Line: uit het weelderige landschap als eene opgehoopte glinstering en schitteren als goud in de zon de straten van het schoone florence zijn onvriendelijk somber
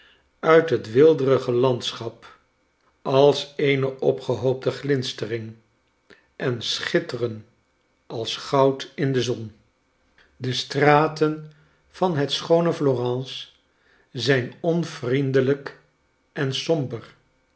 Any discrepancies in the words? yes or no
yes